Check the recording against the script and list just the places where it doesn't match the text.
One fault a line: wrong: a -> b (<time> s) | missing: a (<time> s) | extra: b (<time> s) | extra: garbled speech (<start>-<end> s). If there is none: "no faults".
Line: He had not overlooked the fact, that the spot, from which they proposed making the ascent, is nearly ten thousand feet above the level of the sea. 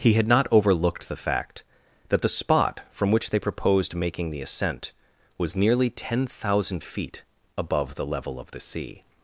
wrong: is -> was (5.4 s)